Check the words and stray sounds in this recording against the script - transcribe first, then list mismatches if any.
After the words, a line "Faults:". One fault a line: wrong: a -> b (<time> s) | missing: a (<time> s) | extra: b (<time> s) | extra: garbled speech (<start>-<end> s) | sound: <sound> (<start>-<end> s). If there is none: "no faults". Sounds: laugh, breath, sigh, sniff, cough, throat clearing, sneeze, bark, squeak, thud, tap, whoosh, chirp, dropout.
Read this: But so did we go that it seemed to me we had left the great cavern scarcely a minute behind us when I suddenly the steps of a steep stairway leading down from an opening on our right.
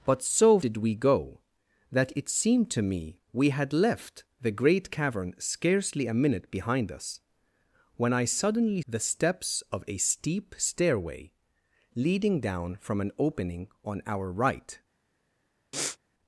But so did we go that it seemed to me we had left the great cavern scarcely a minute behind us when I suddenly the steps of a steep stairway leading down from an opening on our right.
Faults:
sound: sniff (15.7-16.0 s)